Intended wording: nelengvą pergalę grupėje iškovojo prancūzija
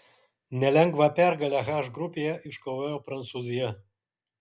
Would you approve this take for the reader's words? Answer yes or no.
no